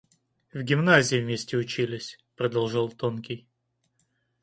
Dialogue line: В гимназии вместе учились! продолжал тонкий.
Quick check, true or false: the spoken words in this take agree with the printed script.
true